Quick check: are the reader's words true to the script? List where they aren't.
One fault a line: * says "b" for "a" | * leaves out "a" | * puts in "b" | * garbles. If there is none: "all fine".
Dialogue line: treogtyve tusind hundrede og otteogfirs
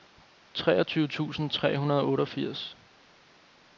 * puts in "tre"